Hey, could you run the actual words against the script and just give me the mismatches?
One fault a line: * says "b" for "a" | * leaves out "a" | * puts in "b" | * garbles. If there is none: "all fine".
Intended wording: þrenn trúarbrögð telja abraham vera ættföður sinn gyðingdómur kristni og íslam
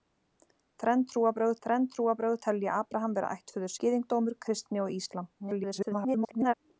* puts in "þrenn trúarbrögð"
* leaves out "sinn"
* garbles